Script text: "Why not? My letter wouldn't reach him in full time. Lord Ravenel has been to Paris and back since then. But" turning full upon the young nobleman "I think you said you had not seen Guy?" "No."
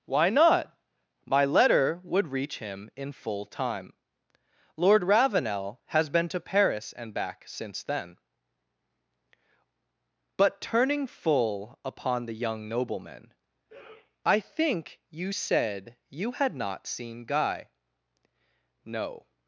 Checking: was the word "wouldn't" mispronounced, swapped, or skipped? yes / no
yes